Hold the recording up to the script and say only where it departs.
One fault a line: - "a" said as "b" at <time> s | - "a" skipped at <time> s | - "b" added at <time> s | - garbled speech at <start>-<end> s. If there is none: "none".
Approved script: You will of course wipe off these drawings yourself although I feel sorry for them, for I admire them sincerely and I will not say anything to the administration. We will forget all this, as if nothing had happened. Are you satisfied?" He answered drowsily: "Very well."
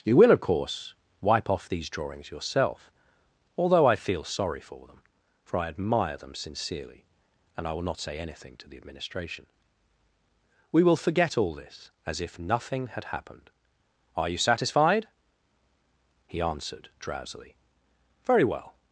none